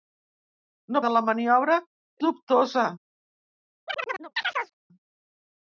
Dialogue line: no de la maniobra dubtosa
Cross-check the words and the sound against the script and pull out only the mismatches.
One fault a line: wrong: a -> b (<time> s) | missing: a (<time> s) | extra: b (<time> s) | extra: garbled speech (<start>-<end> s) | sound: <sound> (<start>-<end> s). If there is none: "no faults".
sound: chirp (3.9-4.7 s)